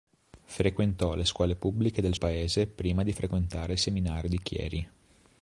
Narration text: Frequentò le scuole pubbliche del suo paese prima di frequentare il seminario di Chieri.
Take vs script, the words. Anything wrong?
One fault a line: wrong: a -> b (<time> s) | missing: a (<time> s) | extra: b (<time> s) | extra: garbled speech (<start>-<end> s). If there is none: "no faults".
missing: suo (2.1 s)